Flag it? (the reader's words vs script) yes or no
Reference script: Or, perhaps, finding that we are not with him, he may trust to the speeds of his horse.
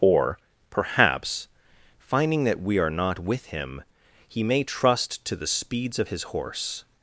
no